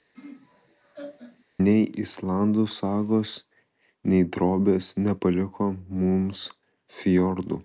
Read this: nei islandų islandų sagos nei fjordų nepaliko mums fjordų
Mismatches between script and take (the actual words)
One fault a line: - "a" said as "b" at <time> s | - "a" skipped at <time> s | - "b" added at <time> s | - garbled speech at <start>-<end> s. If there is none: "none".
- "islandų" skipped at 2.6 s
- "fjordų" said as "drobės" at 4.4 s